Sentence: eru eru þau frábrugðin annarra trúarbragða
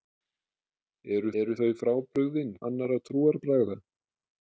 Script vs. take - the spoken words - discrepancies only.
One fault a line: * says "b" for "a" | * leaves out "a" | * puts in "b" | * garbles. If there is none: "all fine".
all fine